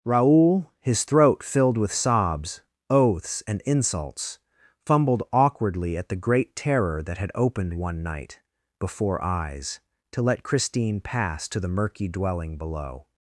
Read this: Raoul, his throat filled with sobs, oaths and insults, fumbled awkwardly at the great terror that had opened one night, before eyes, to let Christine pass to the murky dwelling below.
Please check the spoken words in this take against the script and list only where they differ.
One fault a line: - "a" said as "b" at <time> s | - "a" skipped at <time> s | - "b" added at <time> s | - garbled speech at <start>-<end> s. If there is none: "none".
none